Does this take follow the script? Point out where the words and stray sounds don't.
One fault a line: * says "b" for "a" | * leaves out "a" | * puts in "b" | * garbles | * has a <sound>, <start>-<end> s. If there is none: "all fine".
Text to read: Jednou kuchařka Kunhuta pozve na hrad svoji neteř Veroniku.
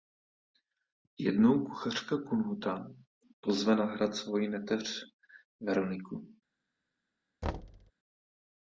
* has a thud, 7.4-7.9 s